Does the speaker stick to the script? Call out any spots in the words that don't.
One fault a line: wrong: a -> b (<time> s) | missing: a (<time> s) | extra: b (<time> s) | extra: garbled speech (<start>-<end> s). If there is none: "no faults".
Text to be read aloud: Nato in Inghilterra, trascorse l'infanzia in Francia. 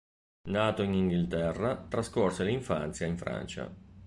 no faults